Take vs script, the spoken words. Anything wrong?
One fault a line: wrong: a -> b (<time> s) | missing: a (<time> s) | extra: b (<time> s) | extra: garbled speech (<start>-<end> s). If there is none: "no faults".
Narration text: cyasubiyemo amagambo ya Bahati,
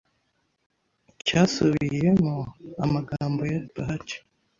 no faults